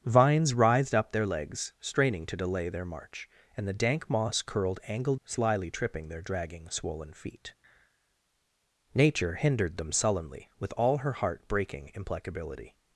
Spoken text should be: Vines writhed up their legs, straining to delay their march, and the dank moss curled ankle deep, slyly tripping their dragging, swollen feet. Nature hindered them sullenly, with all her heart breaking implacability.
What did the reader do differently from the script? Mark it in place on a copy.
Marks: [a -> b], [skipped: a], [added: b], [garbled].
Vines writhed up their legs, straining to delay their march, and the dank moss curled ankle [skipped: deep,] slyly tripping their dragging, swollen feet. Nature hindered them sullenly, with all her heart breaking implacability.